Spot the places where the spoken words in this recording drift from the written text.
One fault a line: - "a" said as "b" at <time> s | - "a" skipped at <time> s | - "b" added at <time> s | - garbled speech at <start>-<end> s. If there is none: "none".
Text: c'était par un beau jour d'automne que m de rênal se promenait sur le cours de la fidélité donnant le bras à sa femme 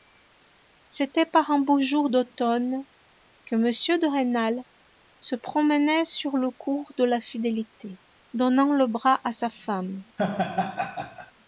none